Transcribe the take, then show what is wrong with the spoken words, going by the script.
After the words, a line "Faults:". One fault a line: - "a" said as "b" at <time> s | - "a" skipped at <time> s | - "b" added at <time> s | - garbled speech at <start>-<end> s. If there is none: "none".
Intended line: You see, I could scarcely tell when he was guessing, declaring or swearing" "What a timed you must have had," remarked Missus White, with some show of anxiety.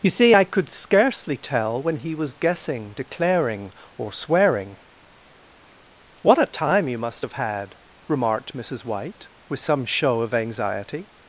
You see, I could scarcely tell when he was guessing, declaring or swearing" "What a time you must have had," remarked Missus White, with some show of anxiety.
Faults:
- "timed" said as "time" at 6.4 s